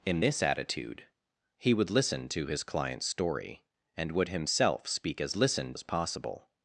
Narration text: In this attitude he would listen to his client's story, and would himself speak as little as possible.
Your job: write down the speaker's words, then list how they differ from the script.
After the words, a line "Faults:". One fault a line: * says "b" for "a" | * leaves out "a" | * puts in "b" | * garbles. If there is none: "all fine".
In this attitude he would listen to his client's story, and would himself speak as listen as possible.
Faults:
* says "listen" for "little"